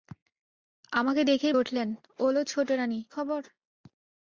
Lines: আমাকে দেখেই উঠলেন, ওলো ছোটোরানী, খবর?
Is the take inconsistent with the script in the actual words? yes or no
no